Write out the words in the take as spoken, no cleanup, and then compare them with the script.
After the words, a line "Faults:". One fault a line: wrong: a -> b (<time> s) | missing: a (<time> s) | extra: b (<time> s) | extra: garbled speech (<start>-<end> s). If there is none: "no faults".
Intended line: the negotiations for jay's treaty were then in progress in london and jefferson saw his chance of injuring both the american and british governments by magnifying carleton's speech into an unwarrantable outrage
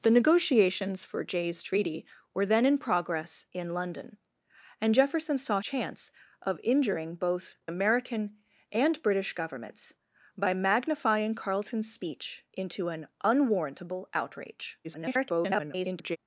the negotiations for jay's treaty were then in progress in london and jefferson saw chance of injuring both american and british governments by magnifying carleton's speech into an unwarrantable outrage [garbled]
Faults:
missing: his (5.6 s)
missing: the (7.6 s)
extra: garbled speech (14.8-16.2 s)